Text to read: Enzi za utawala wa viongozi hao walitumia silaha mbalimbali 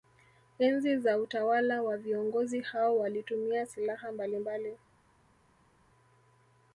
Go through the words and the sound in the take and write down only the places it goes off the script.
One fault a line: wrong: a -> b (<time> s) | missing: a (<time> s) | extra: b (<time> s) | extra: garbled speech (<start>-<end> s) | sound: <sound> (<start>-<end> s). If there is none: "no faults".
no faults